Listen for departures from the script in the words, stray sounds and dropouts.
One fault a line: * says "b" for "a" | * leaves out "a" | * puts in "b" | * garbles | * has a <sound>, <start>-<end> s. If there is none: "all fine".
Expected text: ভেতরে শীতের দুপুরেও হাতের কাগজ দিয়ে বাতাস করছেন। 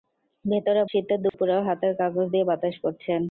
* has a dropout, 1.3-1.3 s